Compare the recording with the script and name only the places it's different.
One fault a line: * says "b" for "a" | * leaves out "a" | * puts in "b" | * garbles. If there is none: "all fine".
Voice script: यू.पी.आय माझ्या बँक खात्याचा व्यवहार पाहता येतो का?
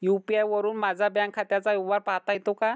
* puts in "वरुन"